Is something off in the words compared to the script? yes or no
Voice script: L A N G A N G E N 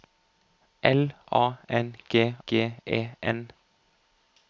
yes